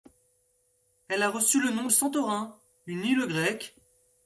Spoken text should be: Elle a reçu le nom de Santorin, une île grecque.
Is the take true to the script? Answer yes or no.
no